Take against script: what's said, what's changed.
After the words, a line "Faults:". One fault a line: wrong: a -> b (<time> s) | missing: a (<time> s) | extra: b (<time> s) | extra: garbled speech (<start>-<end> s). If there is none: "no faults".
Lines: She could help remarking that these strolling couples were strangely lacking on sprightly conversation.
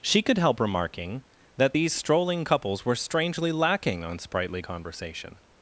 She could help remarking that these strolling couples were strangely lacking on sprightly conversation.
Faults:
no faults